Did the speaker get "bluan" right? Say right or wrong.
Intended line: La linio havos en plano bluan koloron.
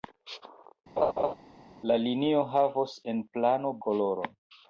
wrong